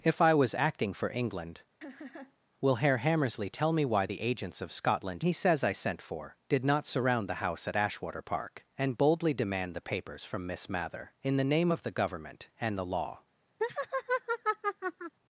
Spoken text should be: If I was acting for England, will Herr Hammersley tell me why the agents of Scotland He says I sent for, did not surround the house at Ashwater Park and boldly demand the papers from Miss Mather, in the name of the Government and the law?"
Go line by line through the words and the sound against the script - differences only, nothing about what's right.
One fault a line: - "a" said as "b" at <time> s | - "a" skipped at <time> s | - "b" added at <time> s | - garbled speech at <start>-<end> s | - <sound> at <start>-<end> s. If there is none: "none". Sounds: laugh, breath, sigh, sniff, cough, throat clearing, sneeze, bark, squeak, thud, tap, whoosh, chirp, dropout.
- laugh at 1.8-2.4 s
- laugh at 13.6-15.1 s